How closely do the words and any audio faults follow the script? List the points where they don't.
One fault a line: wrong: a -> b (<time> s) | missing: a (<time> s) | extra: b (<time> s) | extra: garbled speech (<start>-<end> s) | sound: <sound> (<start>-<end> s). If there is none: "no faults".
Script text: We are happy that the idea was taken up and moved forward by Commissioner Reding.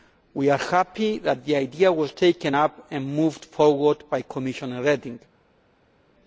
no faults